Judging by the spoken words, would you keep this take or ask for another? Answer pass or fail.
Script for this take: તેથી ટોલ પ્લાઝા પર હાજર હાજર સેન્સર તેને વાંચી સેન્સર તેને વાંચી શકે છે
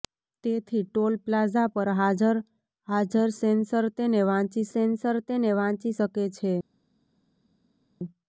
pass